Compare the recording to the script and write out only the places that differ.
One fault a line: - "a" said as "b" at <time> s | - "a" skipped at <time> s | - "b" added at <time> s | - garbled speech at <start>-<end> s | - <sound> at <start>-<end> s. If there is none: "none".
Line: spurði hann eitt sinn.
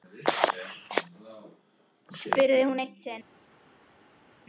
- "hann" said as "hún" at 2.7 s